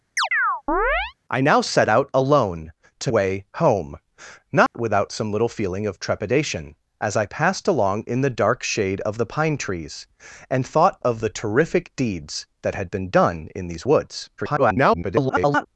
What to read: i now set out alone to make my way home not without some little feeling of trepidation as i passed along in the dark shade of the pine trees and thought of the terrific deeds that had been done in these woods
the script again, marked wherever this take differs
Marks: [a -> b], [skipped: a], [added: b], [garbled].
i now set out alone to [skipped: make my] way home not without some little feeling of trepidation as i passed along in the dark shade of the pine trees and thought of the terrific deeds that had been done in these woods [garbled]